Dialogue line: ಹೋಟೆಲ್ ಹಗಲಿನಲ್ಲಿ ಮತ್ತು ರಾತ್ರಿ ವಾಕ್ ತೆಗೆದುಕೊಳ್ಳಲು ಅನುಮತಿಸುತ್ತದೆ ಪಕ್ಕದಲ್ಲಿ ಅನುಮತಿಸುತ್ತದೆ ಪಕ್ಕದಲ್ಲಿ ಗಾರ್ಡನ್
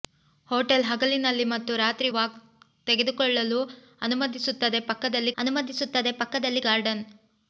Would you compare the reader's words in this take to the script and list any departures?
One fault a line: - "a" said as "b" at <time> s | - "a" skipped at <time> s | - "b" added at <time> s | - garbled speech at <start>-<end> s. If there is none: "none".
none